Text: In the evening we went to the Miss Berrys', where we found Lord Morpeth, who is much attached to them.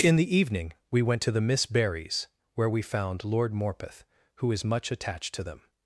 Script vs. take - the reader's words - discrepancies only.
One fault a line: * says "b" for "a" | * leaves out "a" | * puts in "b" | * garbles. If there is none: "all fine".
all fine